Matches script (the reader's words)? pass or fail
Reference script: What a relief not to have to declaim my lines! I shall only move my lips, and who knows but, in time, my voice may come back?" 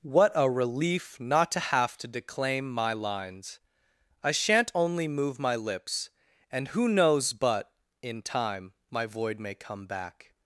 fail